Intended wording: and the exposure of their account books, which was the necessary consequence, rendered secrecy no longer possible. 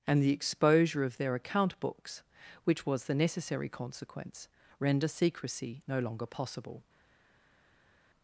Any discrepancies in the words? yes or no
yes